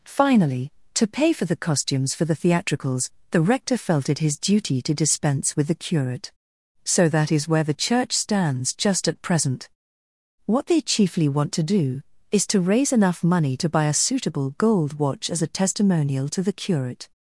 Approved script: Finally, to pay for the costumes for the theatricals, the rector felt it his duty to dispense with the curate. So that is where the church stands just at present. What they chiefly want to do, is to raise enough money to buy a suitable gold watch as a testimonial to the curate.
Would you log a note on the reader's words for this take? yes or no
no